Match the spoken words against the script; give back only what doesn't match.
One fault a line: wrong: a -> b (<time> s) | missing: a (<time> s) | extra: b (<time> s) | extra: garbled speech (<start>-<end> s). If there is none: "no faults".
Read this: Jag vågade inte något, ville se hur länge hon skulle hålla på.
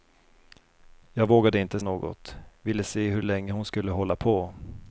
no faults